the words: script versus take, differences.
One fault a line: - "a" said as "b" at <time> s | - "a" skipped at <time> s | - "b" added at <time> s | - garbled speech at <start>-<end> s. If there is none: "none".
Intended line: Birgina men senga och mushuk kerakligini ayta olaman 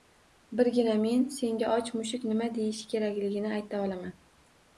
- "nima deyishi" added at 2.3 s